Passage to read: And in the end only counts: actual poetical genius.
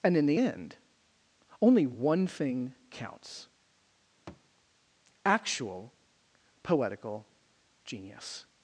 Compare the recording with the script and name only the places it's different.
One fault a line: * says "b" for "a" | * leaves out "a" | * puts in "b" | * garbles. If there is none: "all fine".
* puts in "one thing"